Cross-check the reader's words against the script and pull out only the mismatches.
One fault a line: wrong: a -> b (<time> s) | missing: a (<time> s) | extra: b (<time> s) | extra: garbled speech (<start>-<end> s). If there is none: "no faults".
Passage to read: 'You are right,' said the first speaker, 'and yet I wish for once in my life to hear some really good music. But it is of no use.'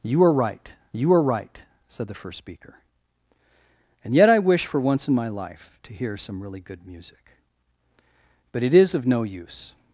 extra: you are right (0.9 s)